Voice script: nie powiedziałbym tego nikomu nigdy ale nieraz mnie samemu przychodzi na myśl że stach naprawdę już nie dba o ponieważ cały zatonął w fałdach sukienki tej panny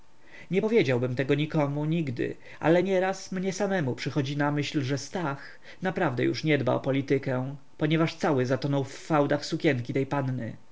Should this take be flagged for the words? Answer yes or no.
yes